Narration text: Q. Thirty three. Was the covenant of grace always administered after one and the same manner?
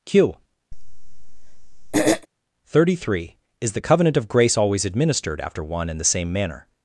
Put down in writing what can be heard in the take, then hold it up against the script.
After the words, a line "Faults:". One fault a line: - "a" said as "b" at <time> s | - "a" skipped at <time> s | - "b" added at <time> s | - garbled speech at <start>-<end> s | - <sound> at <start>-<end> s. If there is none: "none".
Q. Thirty three. Is the covenant of grace always administered after one and the same manner?
Faults:
- throat clearing at 0.7-2.3 s
- "Was" said as "Is" at 3.6 s